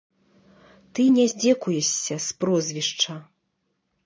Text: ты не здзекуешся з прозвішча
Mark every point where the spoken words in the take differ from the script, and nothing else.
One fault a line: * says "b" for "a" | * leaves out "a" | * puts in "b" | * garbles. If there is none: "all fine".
all fine